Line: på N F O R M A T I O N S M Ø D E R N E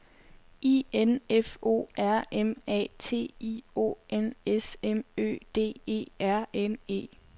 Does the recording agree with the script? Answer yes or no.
no